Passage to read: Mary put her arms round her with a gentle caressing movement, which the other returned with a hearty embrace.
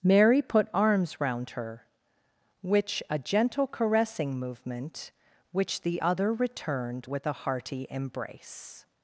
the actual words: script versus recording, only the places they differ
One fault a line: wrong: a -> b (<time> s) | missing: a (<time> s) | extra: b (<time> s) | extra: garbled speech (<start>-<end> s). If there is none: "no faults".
missing: her (0.7 s)
wrong: with -> which (2.6 s)